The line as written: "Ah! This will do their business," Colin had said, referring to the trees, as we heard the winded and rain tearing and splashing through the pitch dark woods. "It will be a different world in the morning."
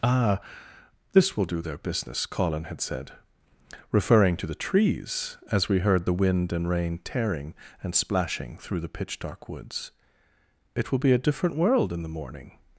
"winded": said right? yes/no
no